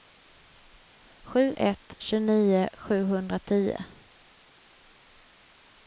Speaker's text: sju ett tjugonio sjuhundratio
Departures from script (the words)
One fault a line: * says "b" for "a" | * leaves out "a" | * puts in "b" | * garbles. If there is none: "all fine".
all fine